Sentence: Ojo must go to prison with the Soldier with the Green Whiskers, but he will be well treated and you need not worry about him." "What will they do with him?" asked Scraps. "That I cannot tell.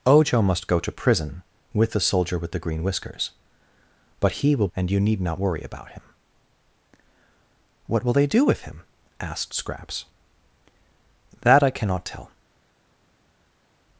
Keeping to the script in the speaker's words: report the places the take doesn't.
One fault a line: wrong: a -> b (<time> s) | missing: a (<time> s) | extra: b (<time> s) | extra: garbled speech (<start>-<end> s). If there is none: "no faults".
missing: be well treated (4.7 s)